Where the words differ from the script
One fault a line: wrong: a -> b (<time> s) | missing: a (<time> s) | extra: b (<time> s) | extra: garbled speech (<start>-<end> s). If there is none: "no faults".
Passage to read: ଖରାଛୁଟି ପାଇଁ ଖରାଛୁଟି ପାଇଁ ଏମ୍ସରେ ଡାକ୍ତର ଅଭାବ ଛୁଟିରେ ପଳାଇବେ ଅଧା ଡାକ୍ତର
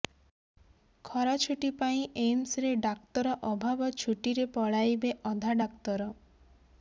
missing: ଖରାଛୁଟି ପାଇଁ (2.0 s)